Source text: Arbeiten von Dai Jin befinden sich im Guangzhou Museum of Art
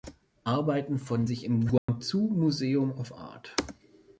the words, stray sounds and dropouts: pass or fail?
fail